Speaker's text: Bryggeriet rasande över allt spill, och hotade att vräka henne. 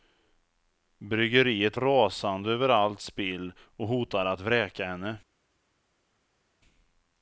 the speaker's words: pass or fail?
pass